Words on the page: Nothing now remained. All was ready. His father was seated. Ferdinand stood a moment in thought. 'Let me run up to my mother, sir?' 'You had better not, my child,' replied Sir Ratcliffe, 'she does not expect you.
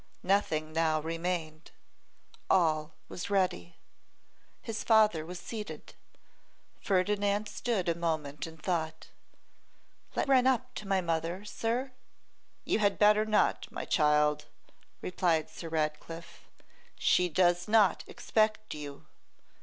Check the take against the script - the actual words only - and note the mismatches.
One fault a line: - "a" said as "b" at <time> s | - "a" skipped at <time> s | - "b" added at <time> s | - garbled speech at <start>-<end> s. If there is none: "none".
- "me" skipped at 10.3 s